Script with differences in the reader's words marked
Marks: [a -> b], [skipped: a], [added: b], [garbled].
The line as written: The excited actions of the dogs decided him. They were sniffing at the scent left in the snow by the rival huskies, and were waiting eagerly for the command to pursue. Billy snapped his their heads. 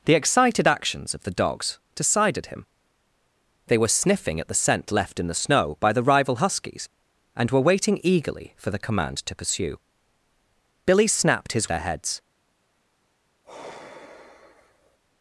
The excited actions of the dogs decided him. They were sniffing at the scent left in the snow by the rival huskies, and were waiting eagerly for the command to pursue. Billy snapped his their heads.